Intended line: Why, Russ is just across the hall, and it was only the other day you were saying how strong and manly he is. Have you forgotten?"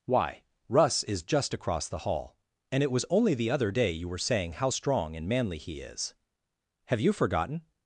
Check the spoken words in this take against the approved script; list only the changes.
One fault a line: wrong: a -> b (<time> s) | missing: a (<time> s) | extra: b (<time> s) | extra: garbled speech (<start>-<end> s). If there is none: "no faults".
no faults